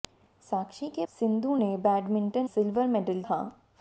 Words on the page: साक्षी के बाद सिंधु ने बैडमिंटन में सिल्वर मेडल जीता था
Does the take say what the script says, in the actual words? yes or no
no